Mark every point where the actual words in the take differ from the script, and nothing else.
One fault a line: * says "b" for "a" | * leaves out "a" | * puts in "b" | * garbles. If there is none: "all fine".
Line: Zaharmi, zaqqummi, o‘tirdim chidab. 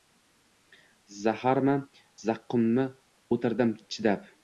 all fine